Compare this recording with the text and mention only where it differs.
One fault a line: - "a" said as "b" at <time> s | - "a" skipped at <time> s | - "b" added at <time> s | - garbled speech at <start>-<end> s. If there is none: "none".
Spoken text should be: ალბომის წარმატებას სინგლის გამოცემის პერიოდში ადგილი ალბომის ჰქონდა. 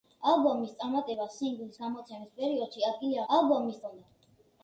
none